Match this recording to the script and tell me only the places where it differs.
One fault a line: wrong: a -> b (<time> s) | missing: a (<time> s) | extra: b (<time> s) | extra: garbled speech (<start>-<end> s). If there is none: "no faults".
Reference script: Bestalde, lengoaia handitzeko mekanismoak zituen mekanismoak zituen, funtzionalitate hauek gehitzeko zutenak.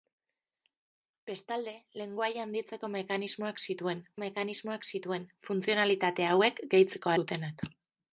no faults